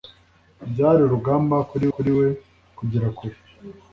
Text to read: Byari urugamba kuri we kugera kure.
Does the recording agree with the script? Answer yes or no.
no